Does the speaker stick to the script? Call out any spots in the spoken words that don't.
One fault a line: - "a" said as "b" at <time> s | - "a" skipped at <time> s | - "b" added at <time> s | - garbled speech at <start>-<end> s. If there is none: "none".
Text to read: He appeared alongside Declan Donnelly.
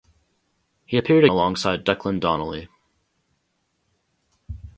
none